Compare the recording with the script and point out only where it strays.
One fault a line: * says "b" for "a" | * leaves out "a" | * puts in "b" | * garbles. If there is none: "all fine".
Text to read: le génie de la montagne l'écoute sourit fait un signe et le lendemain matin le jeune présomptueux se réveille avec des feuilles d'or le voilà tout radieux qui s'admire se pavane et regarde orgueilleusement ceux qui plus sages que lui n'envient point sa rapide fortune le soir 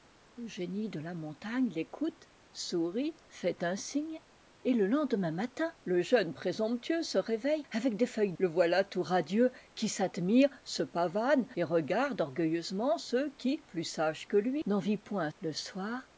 * leaves out "d'or"
* leaves out "sa rapide fortune"